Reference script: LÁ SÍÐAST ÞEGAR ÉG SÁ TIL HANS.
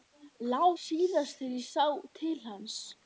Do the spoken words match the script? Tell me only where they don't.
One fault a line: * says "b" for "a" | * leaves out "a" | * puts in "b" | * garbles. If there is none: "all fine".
all fine